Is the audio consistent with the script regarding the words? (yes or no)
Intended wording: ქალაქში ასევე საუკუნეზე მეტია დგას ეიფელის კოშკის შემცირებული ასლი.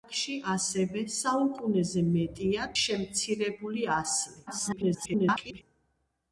no